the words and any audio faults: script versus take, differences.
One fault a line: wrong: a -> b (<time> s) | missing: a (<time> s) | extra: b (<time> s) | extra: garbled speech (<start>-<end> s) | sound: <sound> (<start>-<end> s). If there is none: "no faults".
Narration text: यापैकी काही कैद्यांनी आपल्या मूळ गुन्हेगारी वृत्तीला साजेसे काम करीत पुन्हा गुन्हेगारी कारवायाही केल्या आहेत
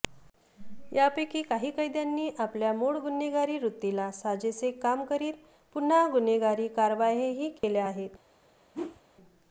sound: dropout (7.6-7.6 s)
sound: whoosh (8.7-9.0 s)